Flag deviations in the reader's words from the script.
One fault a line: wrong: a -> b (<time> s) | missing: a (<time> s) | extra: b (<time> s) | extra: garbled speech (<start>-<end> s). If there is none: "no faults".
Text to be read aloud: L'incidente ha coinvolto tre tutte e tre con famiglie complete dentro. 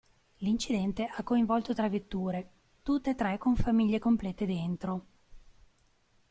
extra: vetture (1.9 s)